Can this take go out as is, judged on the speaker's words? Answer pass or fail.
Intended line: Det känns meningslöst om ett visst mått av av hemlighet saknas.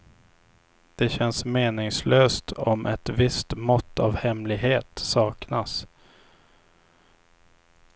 fail